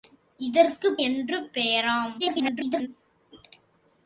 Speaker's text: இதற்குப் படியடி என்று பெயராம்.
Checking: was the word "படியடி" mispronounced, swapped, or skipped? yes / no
yes